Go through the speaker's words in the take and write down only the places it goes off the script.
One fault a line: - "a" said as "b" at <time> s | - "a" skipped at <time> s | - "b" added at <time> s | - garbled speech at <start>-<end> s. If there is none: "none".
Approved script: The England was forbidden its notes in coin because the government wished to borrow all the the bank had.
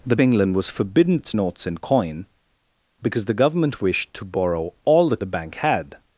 none